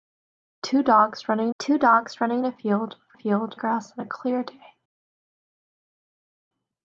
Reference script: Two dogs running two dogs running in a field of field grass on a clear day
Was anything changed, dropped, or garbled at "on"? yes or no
no